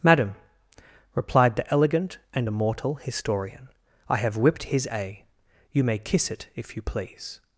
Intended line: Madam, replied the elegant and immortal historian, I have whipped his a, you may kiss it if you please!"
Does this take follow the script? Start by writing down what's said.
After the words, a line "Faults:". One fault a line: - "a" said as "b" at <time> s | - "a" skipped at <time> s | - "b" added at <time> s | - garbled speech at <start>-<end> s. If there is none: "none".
Madam, replied the elegant and immortal historian, I have whipped his a, you may kiss it if you please!"
Faults:
none